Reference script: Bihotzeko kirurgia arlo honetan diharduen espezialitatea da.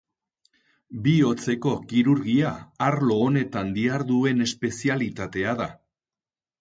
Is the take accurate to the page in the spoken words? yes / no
yes